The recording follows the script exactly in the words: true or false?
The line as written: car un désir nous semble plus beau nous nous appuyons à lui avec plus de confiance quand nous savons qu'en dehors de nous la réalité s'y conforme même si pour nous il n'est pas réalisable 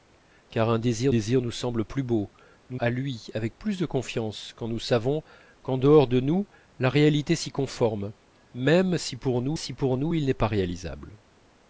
false